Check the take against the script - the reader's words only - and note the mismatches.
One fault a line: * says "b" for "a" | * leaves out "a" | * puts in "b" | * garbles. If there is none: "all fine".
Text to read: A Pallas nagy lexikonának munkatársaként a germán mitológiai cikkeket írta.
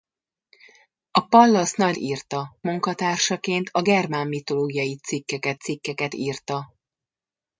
* says "írta" for "lexikonának"
* puts in "cikkeket"